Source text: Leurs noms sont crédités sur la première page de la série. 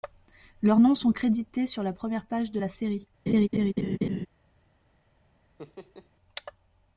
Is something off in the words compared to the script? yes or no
no